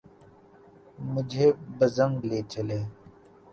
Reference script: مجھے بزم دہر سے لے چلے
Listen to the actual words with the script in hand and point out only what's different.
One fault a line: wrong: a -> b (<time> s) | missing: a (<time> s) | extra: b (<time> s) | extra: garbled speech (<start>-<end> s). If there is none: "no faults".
missing: دہر سے (2.1 s)